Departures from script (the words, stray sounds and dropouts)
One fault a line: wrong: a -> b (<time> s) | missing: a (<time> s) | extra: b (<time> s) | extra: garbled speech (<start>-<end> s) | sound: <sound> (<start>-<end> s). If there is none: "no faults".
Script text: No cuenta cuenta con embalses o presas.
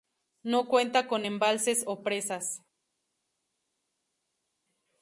missing: cuenta (1.1 s)